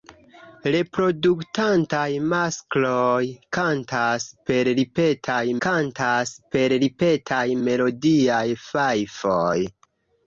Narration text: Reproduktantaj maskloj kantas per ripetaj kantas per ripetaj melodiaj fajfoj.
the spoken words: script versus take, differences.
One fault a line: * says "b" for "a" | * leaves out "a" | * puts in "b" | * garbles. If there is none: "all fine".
all fine